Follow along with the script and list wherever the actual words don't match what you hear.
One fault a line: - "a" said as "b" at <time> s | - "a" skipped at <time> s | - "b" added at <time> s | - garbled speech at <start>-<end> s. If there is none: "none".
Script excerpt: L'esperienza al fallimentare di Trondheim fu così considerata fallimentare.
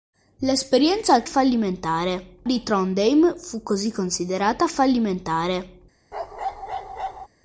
none